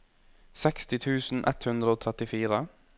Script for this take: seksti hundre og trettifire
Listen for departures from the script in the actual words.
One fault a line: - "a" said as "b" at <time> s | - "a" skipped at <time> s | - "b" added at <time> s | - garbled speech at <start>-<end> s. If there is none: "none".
- "tusen ett" added at 1.1 s